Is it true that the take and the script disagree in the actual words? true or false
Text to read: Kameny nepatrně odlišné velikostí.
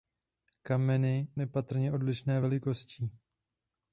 false